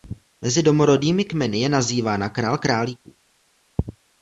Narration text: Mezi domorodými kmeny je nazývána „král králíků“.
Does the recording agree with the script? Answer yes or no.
yes